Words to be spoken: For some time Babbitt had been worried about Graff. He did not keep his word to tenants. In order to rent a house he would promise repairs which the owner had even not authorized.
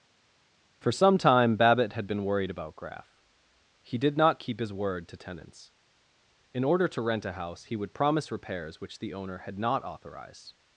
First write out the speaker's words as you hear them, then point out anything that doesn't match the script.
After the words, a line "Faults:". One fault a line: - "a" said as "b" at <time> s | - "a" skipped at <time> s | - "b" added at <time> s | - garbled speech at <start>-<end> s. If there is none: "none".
For some time Babbitt had been worried about Graff. He did not keep his word to tenants. In order to rent a house he would promise repairs which the owner had not authorized.
Faults:
- "even" skipped at 9.6 s